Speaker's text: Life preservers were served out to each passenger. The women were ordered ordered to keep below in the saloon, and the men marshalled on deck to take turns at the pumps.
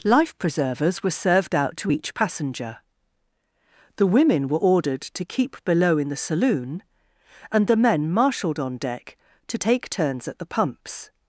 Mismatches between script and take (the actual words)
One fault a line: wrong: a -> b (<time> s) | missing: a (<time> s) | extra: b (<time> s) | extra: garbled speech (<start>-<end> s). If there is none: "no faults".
missing: ordered (5.0 s)